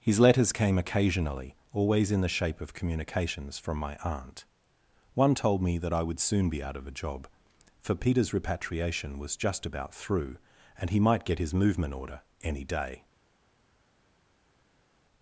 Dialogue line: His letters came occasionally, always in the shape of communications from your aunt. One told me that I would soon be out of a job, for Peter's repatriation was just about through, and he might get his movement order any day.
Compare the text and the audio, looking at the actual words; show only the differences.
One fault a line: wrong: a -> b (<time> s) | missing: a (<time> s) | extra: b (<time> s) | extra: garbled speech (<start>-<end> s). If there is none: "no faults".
wrong: your -> my (3.8 s)